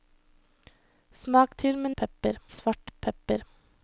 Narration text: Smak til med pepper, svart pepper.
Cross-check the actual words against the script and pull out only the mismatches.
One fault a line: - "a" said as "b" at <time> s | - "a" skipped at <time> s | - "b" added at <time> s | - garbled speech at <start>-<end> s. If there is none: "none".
none